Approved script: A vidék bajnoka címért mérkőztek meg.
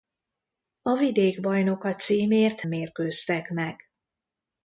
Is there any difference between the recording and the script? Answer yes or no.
no